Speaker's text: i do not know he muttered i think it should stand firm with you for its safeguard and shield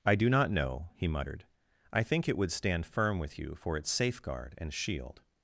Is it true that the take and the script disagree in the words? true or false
true